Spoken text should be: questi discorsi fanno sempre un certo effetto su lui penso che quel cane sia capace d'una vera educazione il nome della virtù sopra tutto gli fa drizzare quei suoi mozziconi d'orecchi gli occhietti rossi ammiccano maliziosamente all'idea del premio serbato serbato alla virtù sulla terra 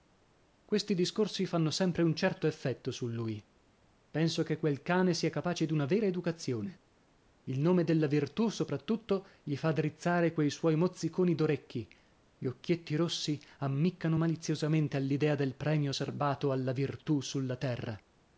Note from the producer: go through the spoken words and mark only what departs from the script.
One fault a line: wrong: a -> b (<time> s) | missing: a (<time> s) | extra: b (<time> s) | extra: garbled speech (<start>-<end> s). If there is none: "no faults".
missing: serbato (16.5 s)